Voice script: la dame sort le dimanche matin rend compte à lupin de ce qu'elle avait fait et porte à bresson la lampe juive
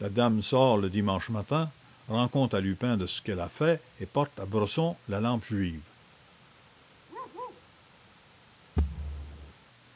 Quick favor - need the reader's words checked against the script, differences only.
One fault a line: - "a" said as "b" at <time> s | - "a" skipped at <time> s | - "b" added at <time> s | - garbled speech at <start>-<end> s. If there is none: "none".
- "avait" said as "a" at 3.4 s